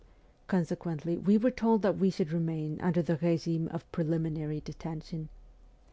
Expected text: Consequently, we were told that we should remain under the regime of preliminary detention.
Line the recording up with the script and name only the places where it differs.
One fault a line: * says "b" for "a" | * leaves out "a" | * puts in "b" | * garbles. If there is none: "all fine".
all fine